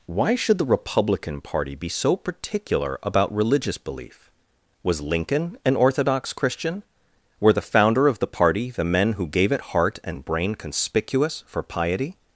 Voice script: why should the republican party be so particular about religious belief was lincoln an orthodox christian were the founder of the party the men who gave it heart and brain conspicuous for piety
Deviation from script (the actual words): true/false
false